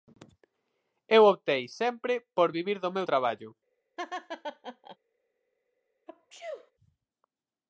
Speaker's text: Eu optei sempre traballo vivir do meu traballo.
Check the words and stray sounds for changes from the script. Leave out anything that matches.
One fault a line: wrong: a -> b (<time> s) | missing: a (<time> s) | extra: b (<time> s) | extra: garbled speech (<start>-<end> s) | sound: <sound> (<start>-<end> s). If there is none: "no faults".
wrong: traballo -> por (2.4 s)
sound: laugh (4.0-5.0 s)
sound: sneeze (6.1-6.7 s)